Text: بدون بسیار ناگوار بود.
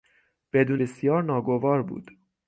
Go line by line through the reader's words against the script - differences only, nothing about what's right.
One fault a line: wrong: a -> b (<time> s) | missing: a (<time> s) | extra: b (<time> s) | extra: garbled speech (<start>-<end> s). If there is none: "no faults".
no faults